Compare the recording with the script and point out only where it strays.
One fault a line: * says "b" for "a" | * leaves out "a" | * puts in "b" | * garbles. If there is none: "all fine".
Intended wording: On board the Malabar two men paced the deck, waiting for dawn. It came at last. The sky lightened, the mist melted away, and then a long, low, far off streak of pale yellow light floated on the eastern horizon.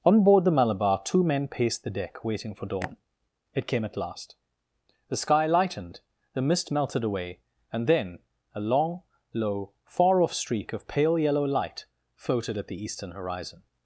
* says "at" for "on"